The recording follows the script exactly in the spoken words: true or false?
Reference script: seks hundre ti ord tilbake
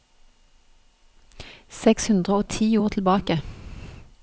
false